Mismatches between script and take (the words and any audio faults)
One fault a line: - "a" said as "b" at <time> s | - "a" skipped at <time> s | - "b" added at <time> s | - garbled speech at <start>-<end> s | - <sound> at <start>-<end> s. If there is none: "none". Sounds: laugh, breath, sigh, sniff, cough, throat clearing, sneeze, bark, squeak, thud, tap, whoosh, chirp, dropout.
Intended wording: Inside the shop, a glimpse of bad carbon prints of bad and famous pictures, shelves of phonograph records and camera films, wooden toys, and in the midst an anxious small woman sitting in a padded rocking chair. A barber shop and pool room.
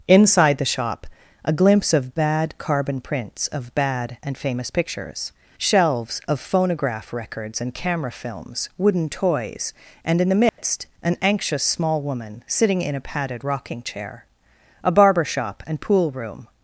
- dropout at 10.5-10.6 s